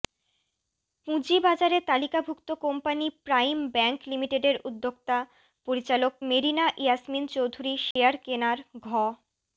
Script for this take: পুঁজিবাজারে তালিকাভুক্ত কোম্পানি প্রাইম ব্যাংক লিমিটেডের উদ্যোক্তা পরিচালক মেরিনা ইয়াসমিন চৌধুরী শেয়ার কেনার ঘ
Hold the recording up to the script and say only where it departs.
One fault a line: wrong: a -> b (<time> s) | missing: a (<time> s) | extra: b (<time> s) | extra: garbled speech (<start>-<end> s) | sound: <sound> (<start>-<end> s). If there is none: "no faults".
sound: dropout (7.9-8.0 s)